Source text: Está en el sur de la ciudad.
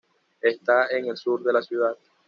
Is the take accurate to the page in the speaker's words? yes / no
yes